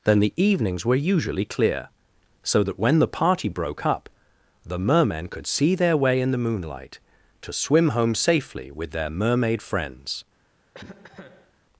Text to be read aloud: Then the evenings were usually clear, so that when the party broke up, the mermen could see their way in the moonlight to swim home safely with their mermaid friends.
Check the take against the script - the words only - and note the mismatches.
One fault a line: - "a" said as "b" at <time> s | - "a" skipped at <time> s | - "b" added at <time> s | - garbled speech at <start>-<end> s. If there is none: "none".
none